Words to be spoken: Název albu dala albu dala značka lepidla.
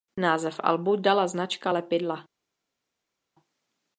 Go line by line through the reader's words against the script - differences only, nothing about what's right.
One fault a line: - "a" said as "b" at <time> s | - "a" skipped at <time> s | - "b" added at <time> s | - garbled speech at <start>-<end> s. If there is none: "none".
- "albu dala" skipped at 1.3 s